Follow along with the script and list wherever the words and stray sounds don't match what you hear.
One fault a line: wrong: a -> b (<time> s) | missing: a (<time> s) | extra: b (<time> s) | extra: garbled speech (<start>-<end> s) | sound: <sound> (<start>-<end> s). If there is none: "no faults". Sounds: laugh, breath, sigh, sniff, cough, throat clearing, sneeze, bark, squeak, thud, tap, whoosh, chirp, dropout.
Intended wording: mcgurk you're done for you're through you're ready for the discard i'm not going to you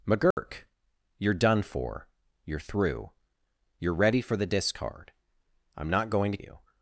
sound: dropout (0.3-0.4 s)